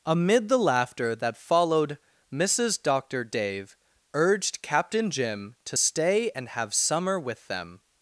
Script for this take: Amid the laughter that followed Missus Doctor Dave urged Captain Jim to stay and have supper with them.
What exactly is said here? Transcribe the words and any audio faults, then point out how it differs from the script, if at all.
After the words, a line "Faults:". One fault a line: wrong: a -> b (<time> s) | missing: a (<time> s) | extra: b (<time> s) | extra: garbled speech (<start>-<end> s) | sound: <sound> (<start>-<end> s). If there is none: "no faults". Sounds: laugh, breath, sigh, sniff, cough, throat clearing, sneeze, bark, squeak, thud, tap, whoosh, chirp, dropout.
Amid the laughter that followed Missus Doctor Dave urged Captain Jim to stay and have summer with them.
Faults:
wrong: supper -> summer (6.7 s)